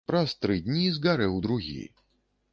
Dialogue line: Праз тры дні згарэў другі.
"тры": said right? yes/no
yes